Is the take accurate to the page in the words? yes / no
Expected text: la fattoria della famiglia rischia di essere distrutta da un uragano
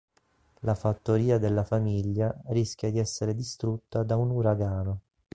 yes